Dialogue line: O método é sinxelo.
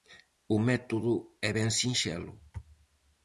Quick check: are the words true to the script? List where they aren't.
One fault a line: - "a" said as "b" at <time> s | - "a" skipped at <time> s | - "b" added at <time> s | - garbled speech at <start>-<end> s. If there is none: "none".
- "ben" added at 1.5 s